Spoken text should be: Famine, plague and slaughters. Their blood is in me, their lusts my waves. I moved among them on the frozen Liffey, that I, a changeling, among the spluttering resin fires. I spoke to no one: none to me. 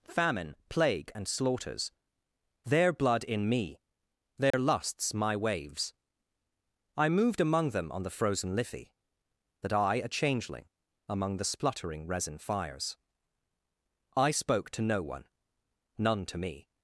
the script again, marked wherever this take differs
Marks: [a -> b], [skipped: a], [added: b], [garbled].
Famine, plague and slaughters. Their blood [skipped: is] in me, their lusts my waves. I moved among them on the frozen Liffey, that I, a changeling, among the spluttering resin fires. I spoke to no one: none to me.